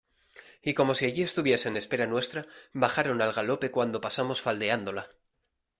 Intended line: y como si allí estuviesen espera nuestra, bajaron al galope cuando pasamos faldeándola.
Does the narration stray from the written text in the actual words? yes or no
no